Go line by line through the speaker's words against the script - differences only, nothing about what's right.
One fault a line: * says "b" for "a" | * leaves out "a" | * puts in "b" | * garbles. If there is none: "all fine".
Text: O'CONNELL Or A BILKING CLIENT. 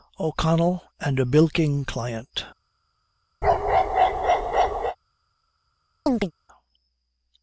* says "AND" for "Or"